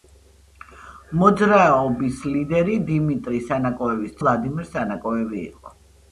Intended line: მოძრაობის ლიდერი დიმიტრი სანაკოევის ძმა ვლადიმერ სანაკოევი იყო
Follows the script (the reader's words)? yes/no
no